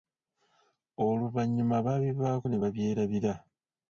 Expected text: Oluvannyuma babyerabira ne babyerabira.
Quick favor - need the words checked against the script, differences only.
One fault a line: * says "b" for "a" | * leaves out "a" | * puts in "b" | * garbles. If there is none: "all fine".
* says "baabivaako" for "babyerabira"